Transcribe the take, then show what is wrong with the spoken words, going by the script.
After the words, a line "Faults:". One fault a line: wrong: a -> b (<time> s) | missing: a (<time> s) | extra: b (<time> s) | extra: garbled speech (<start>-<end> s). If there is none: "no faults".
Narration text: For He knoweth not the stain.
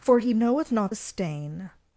For He knoweth not the stain.
Faults:
no faults